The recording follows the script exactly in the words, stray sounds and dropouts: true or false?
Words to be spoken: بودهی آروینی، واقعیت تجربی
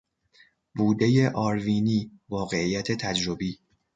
true